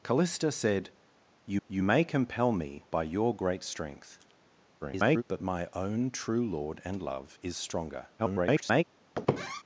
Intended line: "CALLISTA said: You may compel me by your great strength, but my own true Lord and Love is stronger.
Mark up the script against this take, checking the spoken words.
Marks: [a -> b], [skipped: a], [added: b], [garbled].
"CALLISTA said: You [added: You] may compel me by your great strength, [garbled] but my own true Lord and Love is stronger. [garbled]